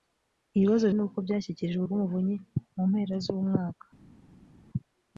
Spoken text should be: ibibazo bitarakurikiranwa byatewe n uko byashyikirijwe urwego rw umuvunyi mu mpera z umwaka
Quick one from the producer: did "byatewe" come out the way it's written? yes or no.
no